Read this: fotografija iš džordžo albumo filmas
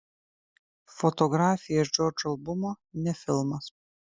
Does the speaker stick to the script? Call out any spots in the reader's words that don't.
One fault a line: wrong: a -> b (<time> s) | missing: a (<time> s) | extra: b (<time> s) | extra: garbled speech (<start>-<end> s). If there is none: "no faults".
extra: ne (3.0 s)